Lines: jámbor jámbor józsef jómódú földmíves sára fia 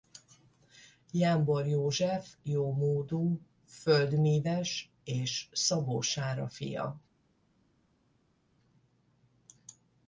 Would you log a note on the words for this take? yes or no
yes